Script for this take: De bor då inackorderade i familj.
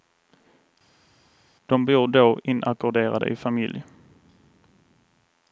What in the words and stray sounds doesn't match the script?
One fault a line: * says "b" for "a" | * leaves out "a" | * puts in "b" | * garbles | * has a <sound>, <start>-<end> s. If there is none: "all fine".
all fine